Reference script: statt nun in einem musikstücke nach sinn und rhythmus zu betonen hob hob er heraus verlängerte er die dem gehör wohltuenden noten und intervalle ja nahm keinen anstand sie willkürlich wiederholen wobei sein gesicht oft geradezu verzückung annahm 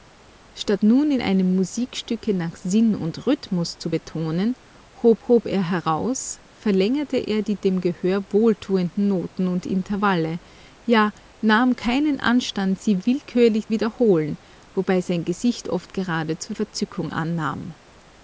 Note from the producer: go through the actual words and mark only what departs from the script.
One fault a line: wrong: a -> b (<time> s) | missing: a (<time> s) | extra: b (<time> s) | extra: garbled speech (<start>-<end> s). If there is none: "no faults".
no faults